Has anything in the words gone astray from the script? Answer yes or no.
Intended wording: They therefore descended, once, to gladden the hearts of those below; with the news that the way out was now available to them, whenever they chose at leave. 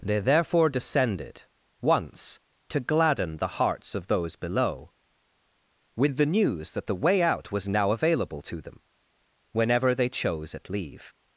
no